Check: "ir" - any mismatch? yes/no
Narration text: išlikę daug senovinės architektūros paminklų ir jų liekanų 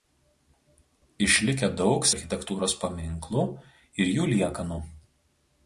no